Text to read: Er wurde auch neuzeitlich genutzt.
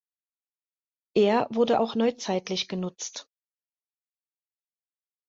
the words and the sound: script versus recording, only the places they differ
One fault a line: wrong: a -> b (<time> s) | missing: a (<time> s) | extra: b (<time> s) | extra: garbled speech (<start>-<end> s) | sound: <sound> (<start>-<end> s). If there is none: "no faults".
no faults